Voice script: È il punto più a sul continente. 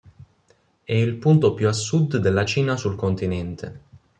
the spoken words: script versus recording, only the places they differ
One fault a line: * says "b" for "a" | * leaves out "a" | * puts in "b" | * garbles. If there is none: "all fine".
* puts in "sud della Cina"